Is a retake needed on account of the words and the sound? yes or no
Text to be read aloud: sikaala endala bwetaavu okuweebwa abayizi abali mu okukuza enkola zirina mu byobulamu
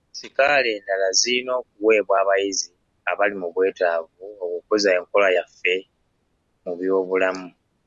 yes